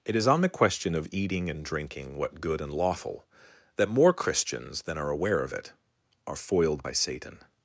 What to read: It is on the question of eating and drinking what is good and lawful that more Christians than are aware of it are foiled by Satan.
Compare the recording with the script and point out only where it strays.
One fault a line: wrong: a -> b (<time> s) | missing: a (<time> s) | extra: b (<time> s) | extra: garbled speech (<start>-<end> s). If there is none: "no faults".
missing: is (2.4 s)